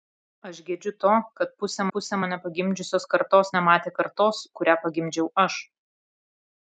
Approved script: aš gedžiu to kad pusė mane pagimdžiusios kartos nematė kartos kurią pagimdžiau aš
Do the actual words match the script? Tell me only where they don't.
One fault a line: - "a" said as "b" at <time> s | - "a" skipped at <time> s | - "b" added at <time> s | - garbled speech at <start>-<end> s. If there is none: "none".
- "pusė" added at 2.0 s